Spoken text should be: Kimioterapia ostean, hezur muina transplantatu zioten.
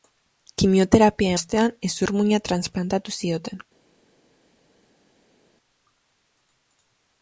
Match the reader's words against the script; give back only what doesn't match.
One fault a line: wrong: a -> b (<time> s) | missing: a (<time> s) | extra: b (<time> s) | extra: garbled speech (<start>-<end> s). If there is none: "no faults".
no faults